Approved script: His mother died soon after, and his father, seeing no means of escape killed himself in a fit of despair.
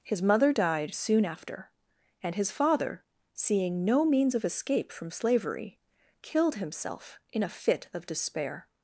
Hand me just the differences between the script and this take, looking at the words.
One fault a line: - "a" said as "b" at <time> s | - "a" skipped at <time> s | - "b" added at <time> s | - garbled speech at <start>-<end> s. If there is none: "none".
- "from slavery" added at 4.9 s